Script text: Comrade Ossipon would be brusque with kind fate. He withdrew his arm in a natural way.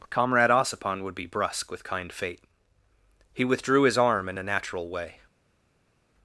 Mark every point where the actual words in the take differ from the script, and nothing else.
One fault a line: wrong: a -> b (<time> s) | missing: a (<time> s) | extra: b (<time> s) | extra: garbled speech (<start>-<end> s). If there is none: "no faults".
no faults